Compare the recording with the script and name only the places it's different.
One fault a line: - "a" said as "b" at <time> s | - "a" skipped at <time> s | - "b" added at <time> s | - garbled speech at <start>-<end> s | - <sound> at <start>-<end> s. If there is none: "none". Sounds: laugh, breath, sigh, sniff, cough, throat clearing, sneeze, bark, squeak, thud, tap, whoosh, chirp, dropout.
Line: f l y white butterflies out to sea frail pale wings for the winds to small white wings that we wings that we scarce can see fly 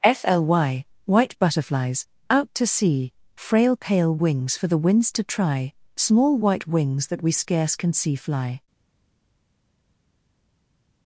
- "try" added at 5.2 s
- "wings that we" skipped at 7.3 s